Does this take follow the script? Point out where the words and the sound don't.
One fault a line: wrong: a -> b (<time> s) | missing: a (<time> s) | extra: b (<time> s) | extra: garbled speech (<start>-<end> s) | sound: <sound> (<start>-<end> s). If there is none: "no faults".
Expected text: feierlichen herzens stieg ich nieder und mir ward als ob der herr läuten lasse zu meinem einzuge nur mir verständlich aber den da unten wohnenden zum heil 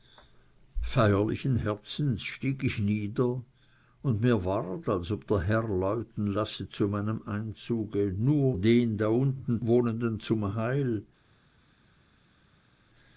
missing: mir verständlich aber (8.6 s)